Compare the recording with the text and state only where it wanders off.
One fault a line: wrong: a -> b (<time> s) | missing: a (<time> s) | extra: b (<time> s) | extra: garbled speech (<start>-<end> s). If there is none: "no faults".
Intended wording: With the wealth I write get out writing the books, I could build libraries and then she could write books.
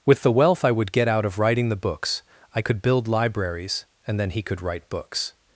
wrong: write -> would (0.7 s)
extra: of (1.2 s)
wrong: she -> he (4.3 s)